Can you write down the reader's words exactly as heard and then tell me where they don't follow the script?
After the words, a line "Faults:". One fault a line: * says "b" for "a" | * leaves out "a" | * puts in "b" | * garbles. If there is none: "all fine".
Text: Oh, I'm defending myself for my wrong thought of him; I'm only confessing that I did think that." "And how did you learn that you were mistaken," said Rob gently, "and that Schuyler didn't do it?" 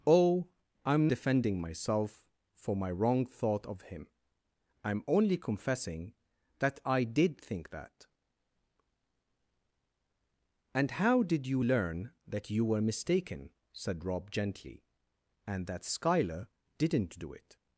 Oh, I'm defending myself for my wrong thought of him; I'm only confessing that I did think that." "And how did you learn that you were mistaken," said Rob gently, "and that Schuyler didn't do it?"
Faults:
all fine